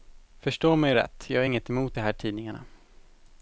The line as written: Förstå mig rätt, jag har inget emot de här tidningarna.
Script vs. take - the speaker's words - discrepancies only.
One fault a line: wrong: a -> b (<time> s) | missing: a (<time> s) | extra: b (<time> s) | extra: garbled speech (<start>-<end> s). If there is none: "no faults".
no faults